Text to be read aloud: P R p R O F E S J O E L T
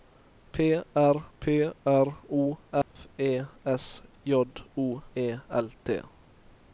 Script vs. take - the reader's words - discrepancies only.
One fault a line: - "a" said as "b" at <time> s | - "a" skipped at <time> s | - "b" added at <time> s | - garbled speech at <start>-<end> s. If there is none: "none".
none